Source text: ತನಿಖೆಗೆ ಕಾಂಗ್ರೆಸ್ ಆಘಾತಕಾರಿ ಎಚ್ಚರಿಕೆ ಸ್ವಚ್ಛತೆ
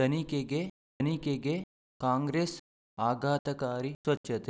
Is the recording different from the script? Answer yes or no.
yes